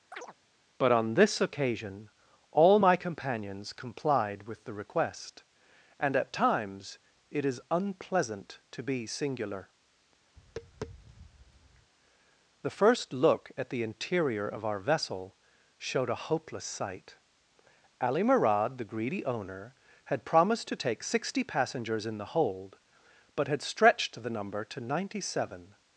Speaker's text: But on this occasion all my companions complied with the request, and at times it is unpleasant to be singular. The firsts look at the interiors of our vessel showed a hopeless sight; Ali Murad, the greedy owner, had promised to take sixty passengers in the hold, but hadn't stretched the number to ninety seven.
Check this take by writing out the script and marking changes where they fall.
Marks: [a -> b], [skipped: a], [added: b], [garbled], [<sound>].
[chirp] But on this occasion all my companions complied with the request, and at times it is unpleasant to be singular. [tap] The [firsts -> first] look at the [interiors -> interior] of our vessel showed a hopeless sight; Ali Murad, the greedy owner, had promised to take sixty passengers in the hold, but [hadn't -> had] stretched the number to ninety seven.